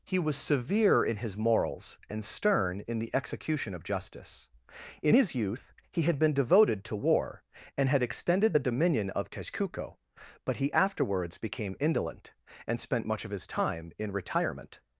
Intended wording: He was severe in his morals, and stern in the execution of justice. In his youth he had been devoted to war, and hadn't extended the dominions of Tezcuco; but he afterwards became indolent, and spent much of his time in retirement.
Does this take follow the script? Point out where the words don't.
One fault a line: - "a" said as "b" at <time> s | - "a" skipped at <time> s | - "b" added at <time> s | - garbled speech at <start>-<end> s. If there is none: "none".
- "hadn't" said as "had" at 7.9 s
- "dominions" said as "dominion" at 8.7 s